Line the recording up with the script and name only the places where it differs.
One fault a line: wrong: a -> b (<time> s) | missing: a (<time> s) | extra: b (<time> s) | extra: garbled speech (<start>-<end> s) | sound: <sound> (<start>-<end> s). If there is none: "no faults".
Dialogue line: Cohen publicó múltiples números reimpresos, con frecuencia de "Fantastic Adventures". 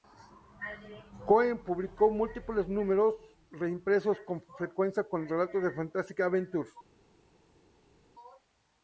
extra: con relatos (5.0 s)